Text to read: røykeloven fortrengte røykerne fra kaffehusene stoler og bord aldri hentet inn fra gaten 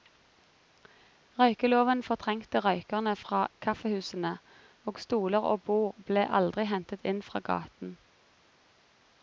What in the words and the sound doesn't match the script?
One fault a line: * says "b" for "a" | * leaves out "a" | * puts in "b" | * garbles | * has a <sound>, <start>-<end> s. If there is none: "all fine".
* puts in "og"
* puts in "ble"